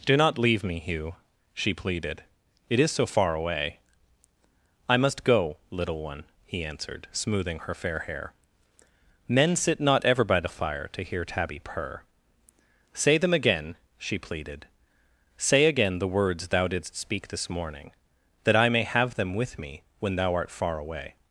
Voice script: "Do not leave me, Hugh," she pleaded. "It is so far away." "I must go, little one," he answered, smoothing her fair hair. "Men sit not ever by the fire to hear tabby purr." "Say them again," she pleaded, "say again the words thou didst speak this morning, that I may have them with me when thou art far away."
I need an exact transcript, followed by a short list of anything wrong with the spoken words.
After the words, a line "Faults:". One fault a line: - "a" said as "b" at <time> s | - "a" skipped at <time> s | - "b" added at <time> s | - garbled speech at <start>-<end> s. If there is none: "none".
"Do not leave me, Hugh," she pleaded. "It is so far away." "I must go, little one," he answered, smoothing her fair hair. "Men sit not ever by the fire to hear tabby purr." "Say them again," she pleaded, "say again the words thou didst speak this morning, that I may have them with me when thou art far away."
Faults:
none